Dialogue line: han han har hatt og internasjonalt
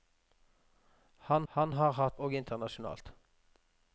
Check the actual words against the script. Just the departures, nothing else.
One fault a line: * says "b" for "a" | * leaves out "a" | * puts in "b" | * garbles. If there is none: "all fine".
all fine